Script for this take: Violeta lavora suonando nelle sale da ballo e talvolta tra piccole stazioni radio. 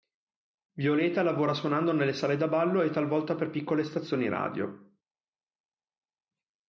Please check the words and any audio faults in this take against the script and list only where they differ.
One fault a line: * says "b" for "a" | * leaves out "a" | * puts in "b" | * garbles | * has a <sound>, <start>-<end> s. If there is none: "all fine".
* says "per" for "tra"